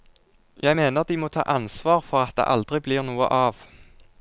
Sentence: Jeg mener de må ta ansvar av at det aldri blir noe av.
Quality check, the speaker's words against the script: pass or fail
fail